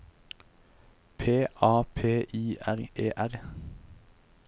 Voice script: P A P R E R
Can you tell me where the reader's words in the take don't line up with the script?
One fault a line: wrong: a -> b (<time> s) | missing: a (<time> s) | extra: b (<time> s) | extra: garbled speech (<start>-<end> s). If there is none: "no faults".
extra: I (2.3 s)